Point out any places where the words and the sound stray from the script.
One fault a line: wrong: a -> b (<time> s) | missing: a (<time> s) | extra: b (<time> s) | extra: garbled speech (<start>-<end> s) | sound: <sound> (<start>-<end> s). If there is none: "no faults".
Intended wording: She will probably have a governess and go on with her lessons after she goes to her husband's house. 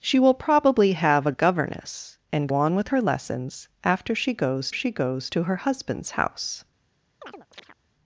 missing: go (2.5 s)
extra: she goes (4.7 s)
sound: chirp (7.2-7.8 s)